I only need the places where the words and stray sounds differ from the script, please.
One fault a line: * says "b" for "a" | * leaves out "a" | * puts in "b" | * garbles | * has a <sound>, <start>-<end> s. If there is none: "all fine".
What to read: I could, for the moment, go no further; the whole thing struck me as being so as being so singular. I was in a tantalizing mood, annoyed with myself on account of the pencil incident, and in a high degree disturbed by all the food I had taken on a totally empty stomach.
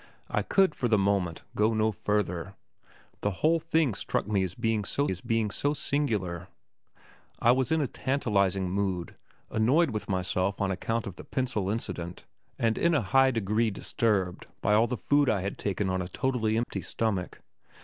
* has a dropout, 16.6-16.7 s